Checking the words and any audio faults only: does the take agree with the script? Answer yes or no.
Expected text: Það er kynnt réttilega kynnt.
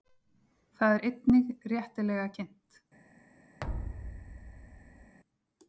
no